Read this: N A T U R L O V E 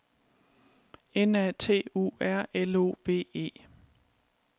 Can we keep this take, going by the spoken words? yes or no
yes